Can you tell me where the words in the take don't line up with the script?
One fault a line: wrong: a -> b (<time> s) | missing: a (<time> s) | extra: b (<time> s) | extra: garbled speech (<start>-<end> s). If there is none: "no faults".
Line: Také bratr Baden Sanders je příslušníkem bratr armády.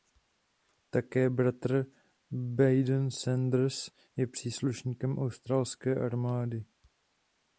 wrong: bratr -> australské (5.2 s)